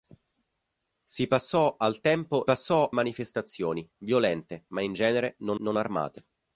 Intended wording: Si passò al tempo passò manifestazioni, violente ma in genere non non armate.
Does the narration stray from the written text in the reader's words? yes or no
no